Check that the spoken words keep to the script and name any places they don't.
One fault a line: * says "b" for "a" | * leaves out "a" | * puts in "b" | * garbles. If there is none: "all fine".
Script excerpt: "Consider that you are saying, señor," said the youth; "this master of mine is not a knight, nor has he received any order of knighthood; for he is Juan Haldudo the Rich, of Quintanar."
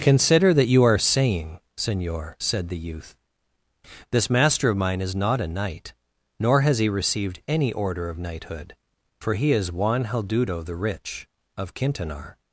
all fine